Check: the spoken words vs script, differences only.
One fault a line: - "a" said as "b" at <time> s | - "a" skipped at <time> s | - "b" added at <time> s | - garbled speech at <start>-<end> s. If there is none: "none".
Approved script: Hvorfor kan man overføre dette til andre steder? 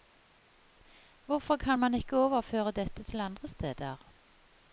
- "ikke" added at 1.9 s